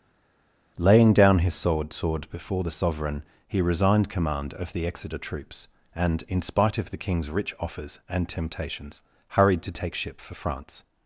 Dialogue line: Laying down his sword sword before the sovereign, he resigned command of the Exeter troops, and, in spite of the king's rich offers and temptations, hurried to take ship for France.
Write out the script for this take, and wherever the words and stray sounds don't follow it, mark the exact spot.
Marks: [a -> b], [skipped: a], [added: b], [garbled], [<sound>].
Laying down his sword sword before the sovereign, he resigned command of the Exeter troops, and, in spite of the king's rich offers and temptations, hurried to take ship for France.